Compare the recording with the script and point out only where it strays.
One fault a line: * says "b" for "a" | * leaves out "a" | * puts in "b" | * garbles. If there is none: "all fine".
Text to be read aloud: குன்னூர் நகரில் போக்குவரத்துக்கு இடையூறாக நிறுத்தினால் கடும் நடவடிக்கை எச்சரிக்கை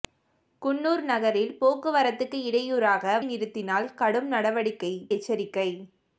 all fine